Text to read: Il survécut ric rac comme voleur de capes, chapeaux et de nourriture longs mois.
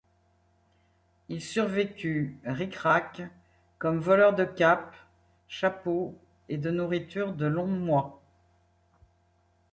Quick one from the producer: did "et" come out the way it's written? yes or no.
yes